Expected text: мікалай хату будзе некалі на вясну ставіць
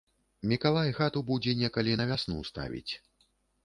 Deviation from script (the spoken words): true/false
false